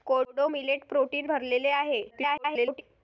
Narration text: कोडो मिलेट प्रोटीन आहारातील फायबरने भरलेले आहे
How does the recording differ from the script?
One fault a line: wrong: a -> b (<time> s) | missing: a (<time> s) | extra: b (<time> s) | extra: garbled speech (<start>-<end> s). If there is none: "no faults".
missing: आहारातील फायबरने (1.3 s)
extra: garbled speech (2.1-2.8 s)